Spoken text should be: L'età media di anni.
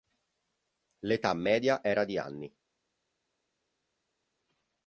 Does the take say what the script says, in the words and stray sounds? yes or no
no